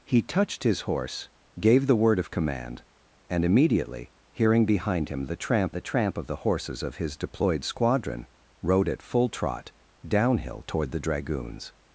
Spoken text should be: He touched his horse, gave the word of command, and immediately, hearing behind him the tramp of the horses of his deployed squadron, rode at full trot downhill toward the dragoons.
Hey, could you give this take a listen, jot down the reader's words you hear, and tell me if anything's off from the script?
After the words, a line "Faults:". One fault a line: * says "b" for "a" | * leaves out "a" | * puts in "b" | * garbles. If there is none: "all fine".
He touched his horse, gave the word of command, and immediately, hearing behind him the tramp the tramp of the horses of his deployed squadron, rode at full trot downhill toward the dragoons.
Faults:
* puts in "the tramp"